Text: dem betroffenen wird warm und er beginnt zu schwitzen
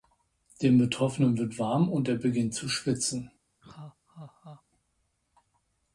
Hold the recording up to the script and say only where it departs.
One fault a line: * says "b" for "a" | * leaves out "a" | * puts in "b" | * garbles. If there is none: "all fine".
all fine